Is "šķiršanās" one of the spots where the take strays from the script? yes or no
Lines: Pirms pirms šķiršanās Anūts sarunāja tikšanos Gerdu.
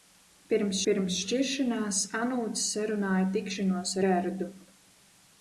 no